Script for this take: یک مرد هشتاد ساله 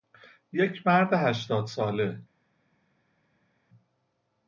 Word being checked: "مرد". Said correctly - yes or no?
yes